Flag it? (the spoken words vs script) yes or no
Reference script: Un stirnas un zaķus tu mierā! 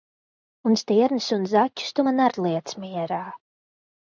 yes